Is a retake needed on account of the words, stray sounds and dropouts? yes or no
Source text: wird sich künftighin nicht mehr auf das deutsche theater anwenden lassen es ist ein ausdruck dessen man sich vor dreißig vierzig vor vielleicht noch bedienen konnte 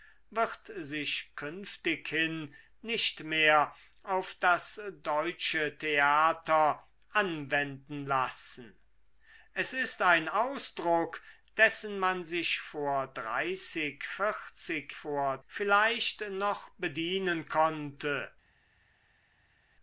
no